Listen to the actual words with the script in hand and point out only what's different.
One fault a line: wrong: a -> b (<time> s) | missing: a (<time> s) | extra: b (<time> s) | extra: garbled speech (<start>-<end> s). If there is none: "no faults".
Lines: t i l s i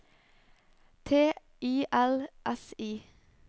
no faults